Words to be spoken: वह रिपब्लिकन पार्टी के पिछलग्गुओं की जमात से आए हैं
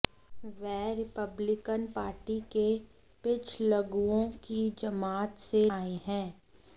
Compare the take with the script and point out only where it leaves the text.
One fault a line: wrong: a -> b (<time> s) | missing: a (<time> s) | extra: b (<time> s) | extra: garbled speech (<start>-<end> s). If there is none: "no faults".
no faults